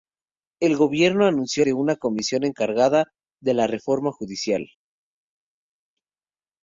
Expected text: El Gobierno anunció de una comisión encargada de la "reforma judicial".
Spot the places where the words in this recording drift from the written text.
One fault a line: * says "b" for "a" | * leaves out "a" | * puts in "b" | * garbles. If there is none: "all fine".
all fine